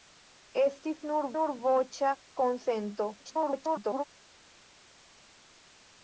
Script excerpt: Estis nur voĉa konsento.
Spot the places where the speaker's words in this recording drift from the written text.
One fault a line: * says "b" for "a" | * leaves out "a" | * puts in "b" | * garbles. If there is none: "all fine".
* puts in "nur"
* garbles